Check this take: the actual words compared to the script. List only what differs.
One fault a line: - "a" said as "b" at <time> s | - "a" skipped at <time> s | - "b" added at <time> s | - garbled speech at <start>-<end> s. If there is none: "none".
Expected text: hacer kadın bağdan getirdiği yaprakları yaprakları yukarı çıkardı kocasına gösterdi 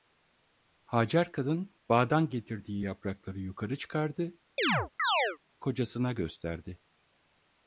- "yaprakları" skipped at 3.4 s